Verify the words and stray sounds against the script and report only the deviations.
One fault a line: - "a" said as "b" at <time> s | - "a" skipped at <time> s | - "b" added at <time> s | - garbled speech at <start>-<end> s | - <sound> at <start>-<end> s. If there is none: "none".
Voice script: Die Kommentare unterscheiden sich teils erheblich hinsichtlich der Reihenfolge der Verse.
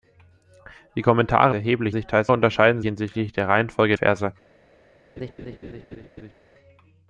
- "unterscheiden" said as "erheblich" at 1.5 s
- "erheblich" said as "unterscheiden" at 2.3 s
- "der" skipped at 4.0 s
- laugh at 5.2-6.4 s